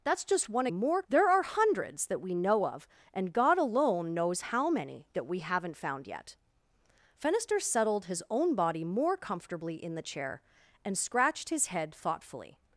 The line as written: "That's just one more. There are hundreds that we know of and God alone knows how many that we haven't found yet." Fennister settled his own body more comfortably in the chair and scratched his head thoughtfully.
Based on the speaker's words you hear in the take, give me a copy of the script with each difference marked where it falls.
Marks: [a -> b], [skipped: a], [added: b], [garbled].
"That's just one more. There are hundreds that we know of and God alone knows how many that we haven't found yet." Fennister settled his own body more comfortably in the chair and scratched his head thoughtfully.